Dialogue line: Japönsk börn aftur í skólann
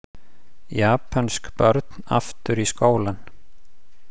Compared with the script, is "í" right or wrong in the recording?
right